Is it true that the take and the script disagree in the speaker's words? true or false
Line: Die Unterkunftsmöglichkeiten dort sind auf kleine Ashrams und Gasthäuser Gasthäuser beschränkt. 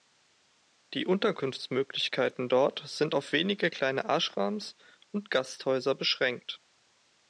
true